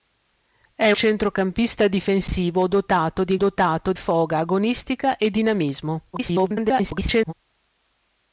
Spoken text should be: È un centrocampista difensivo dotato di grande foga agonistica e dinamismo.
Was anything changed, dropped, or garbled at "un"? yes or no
yes